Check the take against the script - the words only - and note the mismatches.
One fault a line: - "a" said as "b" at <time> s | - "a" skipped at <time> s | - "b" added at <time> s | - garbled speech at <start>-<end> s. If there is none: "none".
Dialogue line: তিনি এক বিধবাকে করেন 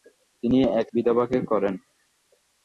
none